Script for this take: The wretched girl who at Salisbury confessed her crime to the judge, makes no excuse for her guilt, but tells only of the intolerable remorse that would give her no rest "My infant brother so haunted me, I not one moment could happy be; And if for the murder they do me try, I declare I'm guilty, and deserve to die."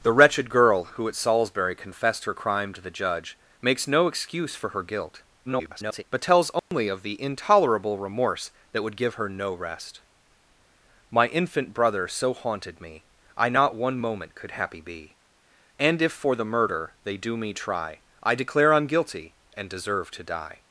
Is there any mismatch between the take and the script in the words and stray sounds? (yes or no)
yes